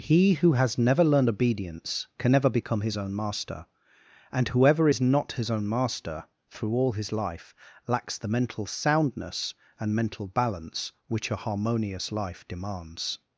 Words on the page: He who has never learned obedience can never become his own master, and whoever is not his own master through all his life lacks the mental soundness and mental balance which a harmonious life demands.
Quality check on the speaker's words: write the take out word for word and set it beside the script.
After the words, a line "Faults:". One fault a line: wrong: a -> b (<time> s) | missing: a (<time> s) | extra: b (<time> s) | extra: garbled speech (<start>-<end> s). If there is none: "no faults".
He who has never learned obedience can never become his own master, and whoever is not his own master through all his life lacks the mental soundness and mental balance which a harmonious life demands.
Faults:
no faults